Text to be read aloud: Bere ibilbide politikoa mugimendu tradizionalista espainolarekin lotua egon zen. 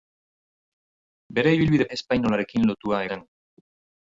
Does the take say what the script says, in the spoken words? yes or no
no